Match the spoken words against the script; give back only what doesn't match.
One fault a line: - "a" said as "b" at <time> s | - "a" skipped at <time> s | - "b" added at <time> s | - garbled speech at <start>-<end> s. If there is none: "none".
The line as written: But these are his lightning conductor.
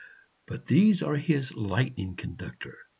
none